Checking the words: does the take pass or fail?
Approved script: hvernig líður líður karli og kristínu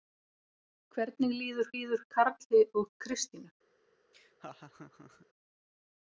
pass